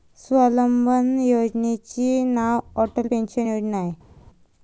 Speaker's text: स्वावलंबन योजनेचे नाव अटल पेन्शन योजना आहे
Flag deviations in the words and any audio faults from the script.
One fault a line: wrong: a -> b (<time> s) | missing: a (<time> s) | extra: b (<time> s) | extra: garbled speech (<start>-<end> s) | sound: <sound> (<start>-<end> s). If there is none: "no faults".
no faults